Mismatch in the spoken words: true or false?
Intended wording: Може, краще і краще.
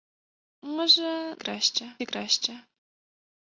false